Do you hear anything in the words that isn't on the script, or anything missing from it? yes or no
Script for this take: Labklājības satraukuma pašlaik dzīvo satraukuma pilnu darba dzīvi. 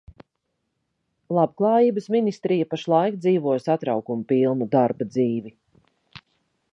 yes